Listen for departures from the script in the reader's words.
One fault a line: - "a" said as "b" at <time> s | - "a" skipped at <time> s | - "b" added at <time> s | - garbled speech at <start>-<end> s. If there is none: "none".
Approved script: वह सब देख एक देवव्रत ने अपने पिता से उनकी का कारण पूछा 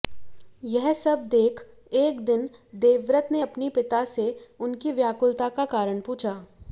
- "वह" said as "यह" at 0.6 s
- "दिन" added at 2.2 s
- "व्याकुलता" added at 4.9 s